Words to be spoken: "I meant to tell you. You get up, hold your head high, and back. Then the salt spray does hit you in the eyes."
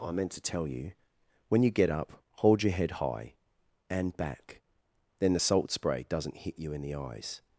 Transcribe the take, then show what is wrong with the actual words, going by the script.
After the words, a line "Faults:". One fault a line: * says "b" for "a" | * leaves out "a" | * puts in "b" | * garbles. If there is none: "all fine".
"I meant to tell you. When you get up, hold your head high, and back. Then the salt spray doesn't hit you in the eyes."
Faults:
* puts in "When"
* says "doesn't" for "does"